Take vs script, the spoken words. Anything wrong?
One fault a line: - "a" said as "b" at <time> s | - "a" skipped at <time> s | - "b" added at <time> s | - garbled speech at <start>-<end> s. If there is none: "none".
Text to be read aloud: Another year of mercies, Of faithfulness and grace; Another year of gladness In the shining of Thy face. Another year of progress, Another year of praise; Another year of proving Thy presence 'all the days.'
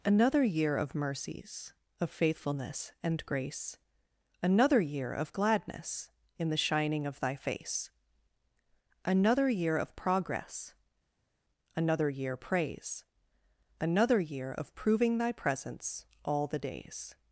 - "of" skipped at 12.4 s